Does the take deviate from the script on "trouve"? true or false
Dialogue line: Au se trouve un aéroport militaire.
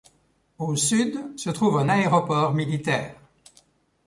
false